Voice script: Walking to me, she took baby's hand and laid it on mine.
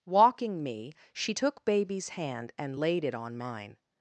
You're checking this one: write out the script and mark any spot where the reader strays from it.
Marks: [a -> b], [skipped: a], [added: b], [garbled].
Walking [skipped: to] me, she took baby's hand and laid it on mine.